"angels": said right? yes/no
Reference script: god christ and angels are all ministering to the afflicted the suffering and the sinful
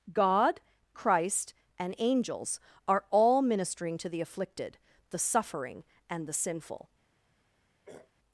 yes